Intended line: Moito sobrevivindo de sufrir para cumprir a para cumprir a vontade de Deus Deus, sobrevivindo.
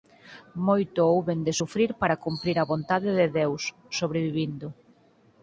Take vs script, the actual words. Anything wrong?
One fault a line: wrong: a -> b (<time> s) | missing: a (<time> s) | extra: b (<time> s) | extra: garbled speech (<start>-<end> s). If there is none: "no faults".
wrong: sobrevivindo -> houben (1.1 s)
missing: para cumprir a (2.7 s)
missing: Deus (3.6 s)